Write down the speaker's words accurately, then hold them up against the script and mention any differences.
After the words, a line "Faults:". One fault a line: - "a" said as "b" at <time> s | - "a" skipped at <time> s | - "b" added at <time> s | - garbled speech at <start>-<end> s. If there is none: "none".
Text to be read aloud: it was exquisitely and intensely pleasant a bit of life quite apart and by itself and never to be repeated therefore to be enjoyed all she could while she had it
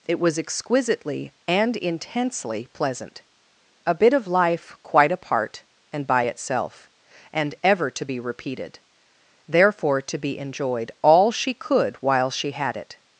it was exquisitely and intensely pleasant a bit of life quite apart and by itself and ever to be repeated therefore to be enjoyed all she could while she had it
Faults:
- "never" said as "ever" at 7.6 s